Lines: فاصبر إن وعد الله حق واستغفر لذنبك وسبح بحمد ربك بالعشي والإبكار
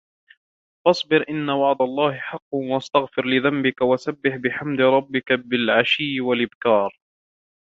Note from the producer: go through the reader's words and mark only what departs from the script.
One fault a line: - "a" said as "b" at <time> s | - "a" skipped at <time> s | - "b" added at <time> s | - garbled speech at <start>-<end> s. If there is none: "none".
none